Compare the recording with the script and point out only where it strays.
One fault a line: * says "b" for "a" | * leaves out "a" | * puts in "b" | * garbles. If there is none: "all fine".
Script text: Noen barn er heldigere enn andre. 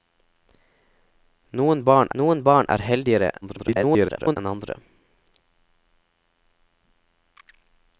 * puts in "noen barn"
* garbles